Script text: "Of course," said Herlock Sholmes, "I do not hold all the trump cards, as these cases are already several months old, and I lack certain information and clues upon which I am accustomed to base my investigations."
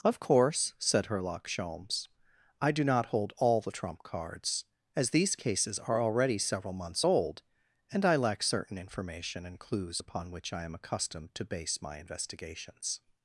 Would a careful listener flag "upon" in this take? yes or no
no